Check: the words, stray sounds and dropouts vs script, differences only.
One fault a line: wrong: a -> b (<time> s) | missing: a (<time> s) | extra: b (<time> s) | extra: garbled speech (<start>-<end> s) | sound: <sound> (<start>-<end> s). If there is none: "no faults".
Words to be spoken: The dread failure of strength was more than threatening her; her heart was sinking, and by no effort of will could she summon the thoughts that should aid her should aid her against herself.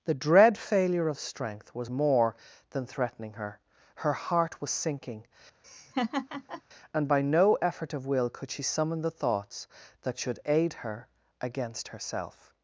sound: laugh (5.6-6.6 s)
missing: should aid her (11.1 s)